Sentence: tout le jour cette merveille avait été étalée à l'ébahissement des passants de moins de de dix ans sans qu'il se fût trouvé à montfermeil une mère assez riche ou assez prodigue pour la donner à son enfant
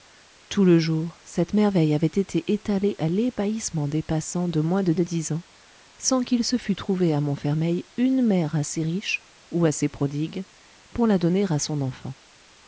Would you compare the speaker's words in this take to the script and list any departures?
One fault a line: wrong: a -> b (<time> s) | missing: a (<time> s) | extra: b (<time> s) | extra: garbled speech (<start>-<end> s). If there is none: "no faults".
no faults